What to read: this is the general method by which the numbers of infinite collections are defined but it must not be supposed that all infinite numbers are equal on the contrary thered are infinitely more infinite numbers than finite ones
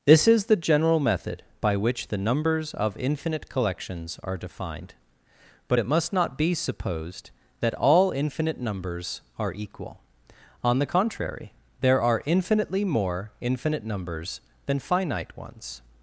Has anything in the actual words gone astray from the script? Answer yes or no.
yes